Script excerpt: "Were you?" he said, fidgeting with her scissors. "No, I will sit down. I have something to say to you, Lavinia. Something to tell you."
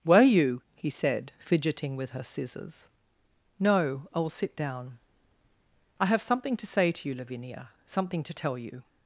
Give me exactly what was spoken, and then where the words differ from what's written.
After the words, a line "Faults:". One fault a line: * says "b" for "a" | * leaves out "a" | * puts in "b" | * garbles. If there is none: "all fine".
"Were you?" he said, fidgeting with her scissors. "No, I will sit down. I have something to say to you, Lavinia. Something to tell you."
Faults:
all fine